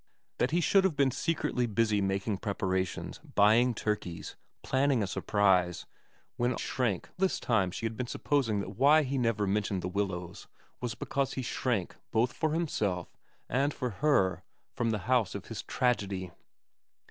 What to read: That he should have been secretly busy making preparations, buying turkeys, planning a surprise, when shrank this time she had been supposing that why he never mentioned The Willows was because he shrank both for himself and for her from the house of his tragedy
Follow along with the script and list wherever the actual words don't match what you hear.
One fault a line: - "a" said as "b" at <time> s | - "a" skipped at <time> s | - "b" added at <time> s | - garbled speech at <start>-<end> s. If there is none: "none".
none